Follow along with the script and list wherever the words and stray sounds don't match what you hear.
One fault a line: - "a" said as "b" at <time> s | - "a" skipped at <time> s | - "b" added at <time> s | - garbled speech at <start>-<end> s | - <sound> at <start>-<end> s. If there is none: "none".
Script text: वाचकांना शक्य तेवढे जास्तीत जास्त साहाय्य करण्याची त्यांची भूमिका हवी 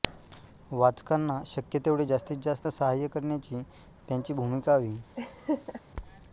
- laugh at 5.2-5.8 s